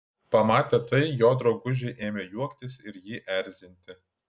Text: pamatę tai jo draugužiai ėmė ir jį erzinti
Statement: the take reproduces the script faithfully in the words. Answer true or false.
false